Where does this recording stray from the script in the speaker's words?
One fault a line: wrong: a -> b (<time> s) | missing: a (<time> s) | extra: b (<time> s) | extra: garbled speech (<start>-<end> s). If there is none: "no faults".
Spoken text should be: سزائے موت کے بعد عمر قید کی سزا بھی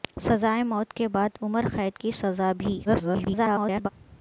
extra: garbled speech (2.8-3.9 s)